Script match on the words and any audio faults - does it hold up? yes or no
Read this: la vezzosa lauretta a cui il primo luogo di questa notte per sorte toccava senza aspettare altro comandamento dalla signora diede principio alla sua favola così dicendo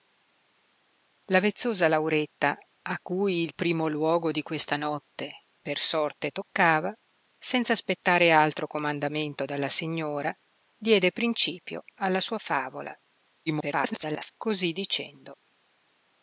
no